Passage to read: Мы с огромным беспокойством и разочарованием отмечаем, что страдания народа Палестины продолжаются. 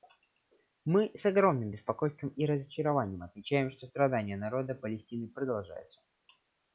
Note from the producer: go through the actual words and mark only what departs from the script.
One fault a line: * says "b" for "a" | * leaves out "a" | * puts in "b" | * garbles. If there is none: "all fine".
all fine